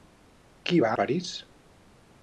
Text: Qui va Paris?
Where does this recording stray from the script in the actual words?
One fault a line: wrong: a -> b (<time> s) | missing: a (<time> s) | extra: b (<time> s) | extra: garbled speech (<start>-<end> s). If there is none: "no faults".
no faults